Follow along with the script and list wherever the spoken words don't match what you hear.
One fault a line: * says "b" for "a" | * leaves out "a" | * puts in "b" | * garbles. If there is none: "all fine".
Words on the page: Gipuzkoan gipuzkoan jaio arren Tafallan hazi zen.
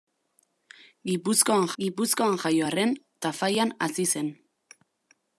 all fine